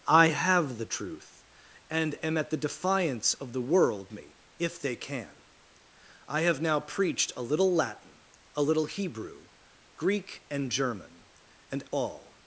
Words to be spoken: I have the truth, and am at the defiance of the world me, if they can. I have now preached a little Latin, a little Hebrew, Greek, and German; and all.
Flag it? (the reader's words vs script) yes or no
no